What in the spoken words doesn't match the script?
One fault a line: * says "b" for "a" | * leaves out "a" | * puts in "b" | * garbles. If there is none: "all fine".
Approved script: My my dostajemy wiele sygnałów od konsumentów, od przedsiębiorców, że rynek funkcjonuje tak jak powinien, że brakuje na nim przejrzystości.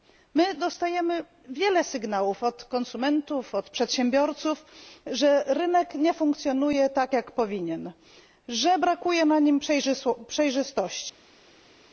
* leaves out "my"
* puts in "nie"